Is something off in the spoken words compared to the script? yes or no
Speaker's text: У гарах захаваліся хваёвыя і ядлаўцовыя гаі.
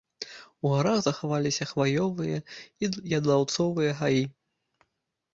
no